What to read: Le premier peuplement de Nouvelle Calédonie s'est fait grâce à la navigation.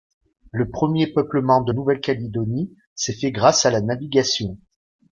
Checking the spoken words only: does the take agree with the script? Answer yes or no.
yes